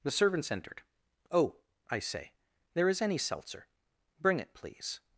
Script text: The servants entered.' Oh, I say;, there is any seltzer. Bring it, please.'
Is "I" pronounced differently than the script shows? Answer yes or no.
no